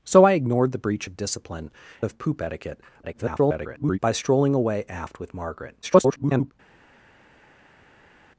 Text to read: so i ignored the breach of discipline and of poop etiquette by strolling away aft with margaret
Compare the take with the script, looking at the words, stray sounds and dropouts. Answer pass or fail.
fail